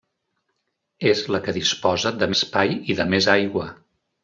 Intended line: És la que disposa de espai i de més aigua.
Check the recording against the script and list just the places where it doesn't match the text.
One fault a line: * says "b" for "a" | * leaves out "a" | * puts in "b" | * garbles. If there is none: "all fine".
all fine